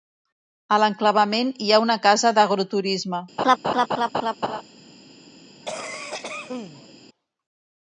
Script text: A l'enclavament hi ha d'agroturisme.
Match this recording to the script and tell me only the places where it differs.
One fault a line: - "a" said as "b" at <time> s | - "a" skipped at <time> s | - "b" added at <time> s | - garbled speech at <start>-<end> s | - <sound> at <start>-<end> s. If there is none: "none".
- "una casa" added at 1.8 s
- laugh at 3.4-4.6 s
- cough at 5.6-6.9 s